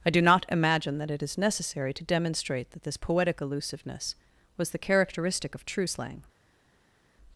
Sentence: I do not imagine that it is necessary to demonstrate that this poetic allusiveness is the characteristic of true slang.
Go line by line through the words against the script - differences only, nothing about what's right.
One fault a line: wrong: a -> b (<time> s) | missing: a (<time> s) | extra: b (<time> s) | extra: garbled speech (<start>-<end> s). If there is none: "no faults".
wrong: is -> was (4.6 s)